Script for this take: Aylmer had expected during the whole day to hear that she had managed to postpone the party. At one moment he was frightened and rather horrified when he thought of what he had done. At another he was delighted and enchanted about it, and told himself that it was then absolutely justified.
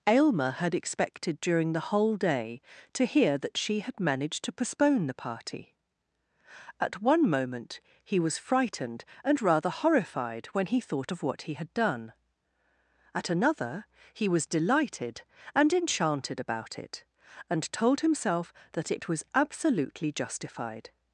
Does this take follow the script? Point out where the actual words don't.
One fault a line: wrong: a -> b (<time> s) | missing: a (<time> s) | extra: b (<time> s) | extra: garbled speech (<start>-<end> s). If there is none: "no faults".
missing: then (19.2 s)